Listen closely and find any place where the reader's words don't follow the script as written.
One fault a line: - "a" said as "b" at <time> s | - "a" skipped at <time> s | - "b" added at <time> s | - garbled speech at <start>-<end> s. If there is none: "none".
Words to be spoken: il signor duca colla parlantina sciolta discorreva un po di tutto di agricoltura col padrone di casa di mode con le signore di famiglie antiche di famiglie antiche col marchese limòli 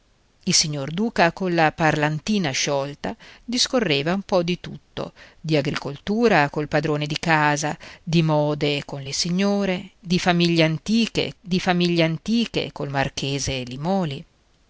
none